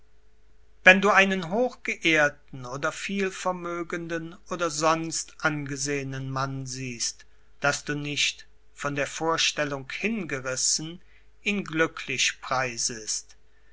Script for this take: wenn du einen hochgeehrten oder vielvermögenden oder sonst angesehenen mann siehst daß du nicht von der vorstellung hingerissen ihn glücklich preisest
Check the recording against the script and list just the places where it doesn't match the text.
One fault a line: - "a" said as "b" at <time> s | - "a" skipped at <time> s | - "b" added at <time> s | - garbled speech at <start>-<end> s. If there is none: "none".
none